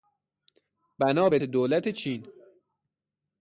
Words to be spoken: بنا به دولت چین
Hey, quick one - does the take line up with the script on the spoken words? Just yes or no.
yes